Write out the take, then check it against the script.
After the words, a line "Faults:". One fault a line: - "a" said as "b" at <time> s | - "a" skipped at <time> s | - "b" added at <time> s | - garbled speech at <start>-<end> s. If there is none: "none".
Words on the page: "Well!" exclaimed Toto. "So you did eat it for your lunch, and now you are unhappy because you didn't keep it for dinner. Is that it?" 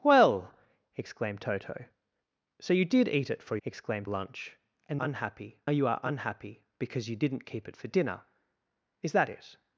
"Well!" exclaimed Toto. "So you did eat it for exclaimed lunch, and unhappy you are unhappy because you didn't keep it for dinner. Is that it?"
Faults:
- "your" said as "exclaimed" at 3.6 s
- "now" said as "unhappy" at 5.0 s